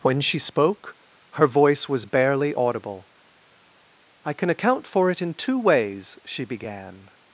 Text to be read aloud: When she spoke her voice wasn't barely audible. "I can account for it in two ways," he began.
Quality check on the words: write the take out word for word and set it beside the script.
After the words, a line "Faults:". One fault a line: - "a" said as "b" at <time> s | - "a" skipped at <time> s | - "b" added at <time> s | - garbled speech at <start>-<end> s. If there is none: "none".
When she spoke her voice was barely audible. "I can account for it in two ways," she began.
Faults:
- "wasn't" said as "was" at 1.9 s
- "he" said as "she" at 6.2 s